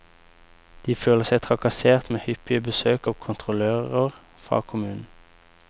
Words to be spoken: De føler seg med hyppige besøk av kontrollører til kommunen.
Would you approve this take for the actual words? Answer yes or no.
no